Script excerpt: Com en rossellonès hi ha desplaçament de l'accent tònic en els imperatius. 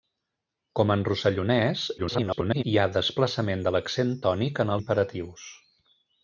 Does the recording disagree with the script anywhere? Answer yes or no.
yes